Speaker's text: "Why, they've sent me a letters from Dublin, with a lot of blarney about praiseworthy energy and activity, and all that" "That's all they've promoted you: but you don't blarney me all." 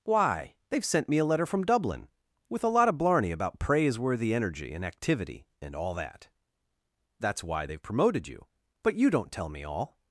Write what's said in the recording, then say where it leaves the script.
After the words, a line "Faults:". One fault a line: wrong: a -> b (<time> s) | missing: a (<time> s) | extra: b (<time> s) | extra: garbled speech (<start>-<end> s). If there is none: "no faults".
"Why, they've sent me a letter from Dublin, with a lot of blarney about praiseworthy energy and activity, and all that" "That's why they've promoted you: but you don't tell me all."
Faults:
wrong: letters -> letter (1.2 s)
wrong: all -> why (7.4 s)
wrong: blarney -> tell (9.3 s)